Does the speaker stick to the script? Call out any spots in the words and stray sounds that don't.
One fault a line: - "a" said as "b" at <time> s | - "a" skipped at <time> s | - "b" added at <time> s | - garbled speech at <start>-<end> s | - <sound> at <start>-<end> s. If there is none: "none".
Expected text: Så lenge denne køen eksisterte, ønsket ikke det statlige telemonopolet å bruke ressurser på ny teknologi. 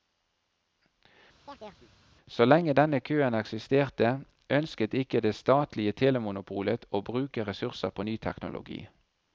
- chirp at 1.4-1.9 s